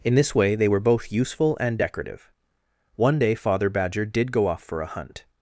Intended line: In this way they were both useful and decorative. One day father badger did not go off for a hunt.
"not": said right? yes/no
no